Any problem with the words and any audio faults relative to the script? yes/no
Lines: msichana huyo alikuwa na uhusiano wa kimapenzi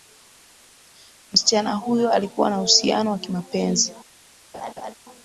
yes